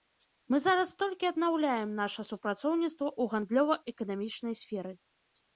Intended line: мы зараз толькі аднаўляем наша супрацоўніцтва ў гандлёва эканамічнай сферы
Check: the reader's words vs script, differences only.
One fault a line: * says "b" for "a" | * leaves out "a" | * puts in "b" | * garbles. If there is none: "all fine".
all fine